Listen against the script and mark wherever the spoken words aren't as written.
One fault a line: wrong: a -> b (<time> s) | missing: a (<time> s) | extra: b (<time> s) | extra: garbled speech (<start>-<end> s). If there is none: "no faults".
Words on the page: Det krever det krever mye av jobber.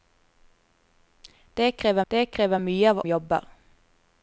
no faults